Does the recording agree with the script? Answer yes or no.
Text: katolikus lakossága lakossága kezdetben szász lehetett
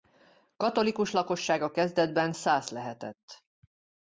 no